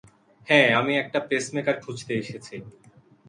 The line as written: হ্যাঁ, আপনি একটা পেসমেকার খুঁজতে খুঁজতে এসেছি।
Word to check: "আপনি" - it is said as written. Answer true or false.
false